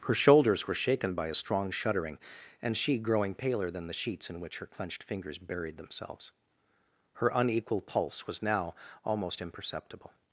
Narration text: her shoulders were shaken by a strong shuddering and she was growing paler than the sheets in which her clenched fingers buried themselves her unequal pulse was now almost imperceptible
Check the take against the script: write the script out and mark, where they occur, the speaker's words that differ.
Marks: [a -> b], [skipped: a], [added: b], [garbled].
her shoulders were shaken by a strong shuddering and she [skipped: was] growing paler than the sheets in which her clenched fingers buried themselves her unequal pulse was now almost imperceptible